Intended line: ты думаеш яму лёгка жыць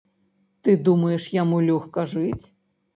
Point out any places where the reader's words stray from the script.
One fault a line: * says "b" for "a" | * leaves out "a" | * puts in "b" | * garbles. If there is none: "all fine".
all fine